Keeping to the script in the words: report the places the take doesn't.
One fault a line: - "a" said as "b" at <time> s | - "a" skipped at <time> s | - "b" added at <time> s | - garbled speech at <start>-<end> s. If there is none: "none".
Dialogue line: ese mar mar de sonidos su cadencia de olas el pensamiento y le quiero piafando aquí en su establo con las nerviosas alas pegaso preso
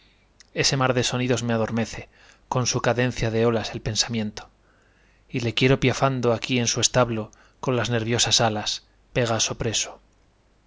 - "mar" skipped at 0.9 s
- "me adormece con" added at 1.4 s